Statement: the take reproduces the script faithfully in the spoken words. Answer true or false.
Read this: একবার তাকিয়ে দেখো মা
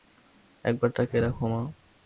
true